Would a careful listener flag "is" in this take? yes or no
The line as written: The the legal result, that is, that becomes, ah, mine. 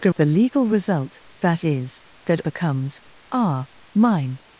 no